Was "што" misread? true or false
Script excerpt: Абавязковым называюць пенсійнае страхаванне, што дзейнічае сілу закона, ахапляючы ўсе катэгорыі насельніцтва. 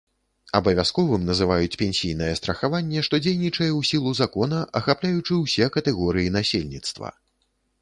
false